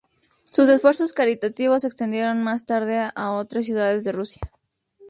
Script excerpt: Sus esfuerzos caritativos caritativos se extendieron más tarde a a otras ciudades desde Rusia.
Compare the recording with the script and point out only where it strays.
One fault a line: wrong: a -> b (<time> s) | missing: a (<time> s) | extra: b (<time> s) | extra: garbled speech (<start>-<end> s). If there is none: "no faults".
missing: caritativos (1.8 s)
missing: a (3.3 s)
wrong: desde -> de (4.0 s)